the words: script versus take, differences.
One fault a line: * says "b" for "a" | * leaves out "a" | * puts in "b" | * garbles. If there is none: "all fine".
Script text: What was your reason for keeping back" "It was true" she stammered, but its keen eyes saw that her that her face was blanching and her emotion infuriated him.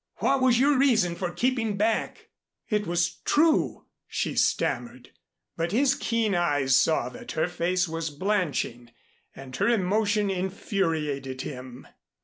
* says "his" for "its"
* leaves out "that her"